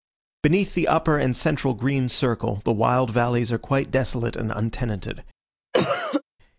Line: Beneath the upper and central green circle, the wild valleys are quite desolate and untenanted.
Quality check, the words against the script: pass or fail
pass